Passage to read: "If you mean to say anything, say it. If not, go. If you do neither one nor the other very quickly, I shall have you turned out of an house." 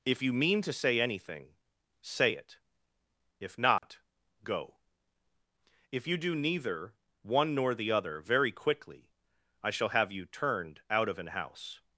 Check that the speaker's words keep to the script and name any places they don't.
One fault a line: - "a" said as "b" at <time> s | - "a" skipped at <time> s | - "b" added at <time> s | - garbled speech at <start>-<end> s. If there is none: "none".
none